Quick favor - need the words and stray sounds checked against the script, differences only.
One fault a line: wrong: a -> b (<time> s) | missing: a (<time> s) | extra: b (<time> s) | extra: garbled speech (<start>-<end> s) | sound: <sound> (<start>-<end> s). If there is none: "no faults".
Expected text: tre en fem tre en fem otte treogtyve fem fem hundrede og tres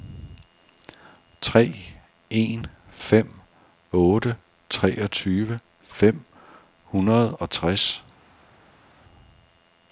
missing: tre en fem (3.3 s)
missing: fem (6.2 s)